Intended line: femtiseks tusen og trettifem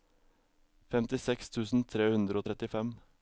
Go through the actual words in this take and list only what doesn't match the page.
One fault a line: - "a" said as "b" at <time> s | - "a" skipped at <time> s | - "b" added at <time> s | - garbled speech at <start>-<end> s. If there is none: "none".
- "tre hundre" added at 1.9 s